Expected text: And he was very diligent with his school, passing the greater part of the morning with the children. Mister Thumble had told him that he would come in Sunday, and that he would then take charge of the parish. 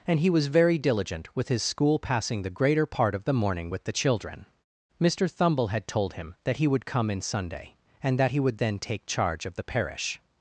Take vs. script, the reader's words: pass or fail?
pass